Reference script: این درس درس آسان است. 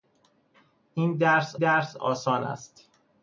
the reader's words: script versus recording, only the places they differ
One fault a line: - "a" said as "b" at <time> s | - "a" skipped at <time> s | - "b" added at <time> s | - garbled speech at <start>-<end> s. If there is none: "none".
none